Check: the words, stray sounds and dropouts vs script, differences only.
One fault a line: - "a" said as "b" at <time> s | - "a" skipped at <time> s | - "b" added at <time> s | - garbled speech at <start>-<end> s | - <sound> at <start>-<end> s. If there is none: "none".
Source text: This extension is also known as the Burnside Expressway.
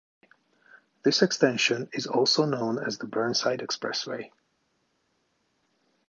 none